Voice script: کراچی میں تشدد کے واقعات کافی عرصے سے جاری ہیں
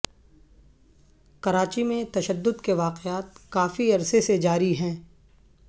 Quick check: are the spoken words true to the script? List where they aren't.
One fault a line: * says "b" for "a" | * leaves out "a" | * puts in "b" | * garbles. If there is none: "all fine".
all fine